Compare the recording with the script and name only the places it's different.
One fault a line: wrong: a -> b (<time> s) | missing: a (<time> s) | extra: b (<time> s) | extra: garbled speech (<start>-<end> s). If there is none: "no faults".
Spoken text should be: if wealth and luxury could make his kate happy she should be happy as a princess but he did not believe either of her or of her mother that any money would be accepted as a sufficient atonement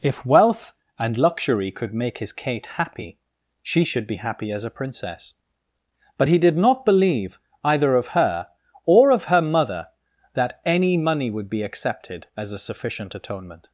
no faults